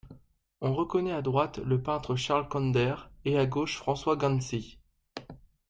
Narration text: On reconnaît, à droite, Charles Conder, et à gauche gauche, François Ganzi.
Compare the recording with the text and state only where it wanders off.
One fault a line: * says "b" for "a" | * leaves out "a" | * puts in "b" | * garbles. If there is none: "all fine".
* puts in "le peintre"
* leaves out "gauche"